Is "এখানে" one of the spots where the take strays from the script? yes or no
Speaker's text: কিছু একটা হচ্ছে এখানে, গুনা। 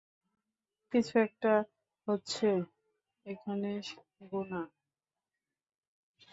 no